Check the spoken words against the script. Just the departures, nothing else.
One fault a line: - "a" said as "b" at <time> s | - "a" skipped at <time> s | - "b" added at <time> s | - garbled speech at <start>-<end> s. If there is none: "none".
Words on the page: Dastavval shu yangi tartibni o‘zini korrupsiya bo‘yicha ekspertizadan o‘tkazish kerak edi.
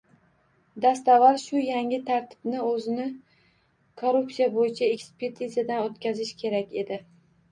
none